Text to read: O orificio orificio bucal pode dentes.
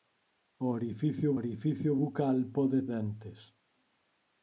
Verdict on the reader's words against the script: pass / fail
pass